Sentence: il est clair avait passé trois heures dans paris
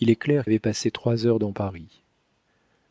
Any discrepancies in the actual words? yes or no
no